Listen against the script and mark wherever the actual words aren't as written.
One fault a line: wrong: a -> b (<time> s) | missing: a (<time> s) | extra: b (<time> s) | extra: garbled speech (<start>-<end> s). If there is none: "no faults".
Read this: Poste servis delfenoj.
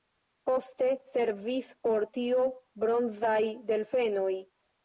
extra: por tio bronzaj (1.9 s)